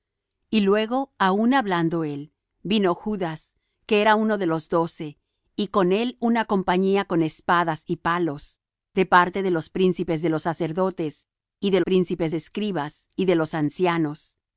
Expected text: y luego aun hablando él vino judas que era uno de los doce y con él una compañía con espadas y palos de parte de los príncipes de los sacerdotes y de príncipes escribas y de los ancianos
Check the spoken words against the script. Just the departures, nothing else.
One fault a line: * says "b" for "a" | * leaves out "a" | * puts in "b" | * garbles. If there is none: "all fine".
all fine